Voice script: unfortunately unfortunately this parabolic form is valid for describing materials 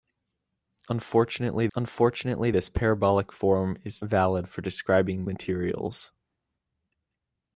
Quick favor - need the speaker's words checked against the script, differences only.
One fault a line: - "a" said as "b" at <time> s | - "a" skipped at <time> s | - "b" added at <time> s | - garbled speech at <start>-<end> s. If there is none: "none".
none